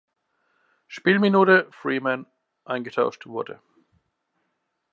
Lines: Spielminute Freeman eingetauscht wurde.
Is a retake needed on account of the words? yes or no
no